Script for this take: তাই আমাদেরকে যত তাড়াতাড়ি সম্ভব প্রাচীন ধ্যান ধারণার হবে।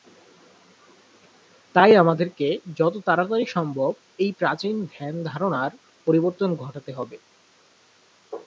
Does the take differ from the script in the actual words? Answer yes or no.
yes